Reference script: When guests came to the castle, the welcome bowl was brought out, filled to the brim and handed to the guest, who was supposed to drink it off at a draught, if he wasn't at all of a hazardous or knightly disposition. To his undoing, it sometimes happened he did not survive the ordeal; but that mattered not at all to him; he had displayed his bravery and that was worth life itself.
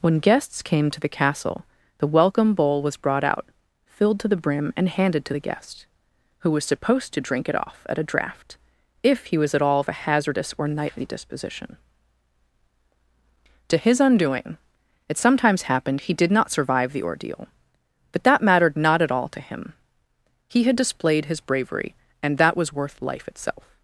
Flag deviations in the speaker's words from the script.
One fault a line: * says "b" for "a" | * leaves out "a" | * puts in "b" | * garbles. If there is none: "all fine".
* says "was" for "wasn't"